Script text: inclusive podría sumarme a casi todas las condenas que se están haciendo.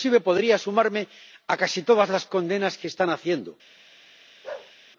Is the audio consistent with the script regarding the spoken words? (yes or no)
no